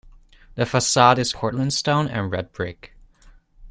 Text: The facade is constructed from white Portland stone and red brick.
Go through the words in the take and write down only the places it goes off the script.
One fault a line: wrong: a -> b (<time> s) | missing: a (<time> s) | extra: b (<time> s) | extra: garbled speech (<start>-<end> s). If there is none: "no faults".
missing: constructed from white (1.3 s)